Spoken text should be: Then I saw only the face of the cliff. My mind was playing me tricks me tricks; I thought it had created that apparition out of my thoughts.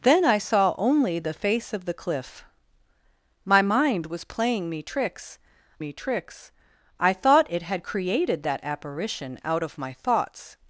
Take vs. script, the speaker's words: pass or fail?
pass